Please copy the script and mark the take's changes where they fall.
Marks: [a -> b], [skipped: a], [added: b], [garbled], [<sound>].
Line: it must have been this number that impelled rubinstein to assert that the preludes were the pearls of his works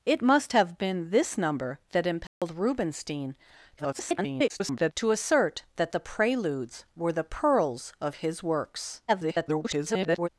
it must have been this number that impelled [dropout] rubinstein [garbled] to assert that the preludes were the pearls of his works [garbled]